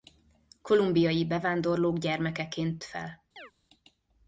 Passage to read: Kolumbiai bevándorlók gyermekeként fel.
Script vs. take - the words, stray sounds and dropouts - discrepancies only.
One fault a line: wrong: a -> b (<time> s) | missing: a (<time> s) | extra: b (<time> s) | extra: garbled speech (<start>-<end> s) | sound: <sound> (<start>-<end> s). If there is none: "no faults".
sound: chirp (3.4-3.5 s)